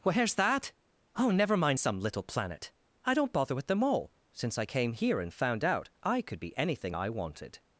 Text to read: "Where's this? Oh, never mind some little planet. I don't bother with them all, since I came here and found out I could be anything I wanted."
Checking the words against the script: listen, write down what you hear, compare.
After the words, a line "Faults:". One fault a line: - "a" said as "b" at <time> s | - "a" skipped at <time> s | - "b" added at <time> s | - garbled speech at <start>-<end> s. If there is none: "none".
"Where's that? Oh, never mind some little planet. I don't bother with them all, since I came here and found out I could be anything I wanted."
Faults:
- "this" said as "that" at 0.3 s